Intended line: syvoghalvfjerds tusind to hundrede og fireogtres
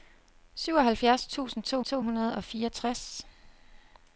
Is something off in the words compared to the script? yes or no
yes